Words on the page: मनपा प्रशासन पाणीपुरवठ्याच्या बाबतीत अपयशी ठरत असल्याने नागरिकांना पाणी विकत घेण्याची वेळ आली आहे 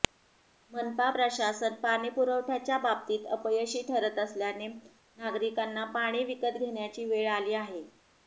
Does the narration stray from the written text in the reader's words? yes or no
no